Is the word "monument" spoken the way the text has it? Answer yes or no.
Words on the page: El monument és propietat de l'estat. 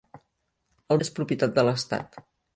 no